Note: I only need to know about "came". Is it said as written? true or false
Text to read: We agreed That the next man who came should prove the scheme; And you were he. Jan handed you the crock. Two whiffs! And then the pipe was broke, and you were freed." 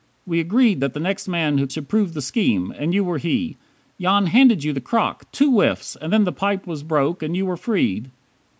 false